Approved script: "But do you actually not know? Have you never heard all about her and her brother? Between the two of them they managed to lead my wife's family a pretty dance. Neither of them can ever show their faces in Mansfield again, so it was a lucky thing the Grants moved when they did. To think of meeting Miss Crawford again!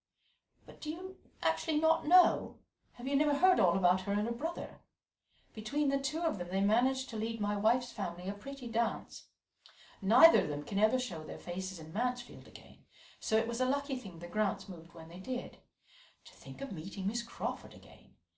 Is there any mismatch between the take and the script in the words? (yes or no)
no